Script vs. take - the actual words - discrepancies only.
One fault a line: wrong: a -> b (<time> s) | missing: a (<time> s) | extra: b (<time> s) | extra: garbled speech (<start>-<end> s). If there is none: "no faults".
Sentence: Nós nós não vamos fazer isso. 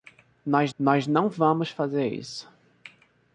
no faults